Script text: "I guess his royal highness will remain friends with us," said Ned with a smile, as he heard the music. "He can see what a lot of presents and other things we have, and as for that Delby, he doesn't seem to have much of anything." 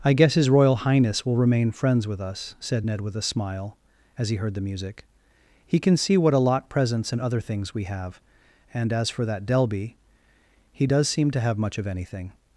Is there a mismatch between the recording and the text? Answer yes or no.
yes